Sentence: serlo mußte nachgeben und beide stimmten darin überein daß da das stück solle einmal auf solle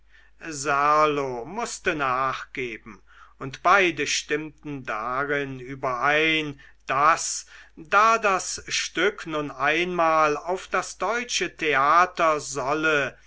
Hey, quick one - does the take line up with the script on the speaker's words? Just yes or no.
no